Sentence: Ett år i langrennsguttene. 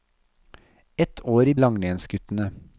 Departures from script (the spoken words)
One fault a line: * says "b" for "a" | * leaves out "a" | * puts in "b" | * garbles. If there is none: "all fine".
all fine